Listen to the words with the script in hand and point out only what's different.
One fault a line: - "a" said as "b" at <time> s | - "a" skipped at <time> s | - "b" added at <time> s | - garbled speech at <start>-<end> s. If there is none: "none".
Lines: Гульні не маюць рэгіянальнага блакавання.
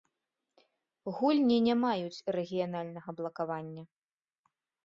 none